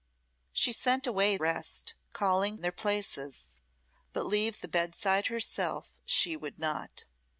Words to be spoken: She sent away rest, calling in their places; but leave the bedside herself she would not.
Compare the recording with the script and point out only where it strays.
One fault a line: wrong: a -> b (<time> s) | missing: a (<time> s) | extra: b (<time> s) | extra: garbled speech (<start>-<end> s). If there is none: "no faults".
no faults